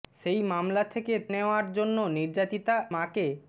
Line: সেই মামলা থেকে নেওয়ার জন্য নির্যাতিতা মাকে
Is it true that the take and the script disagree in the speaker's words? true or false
false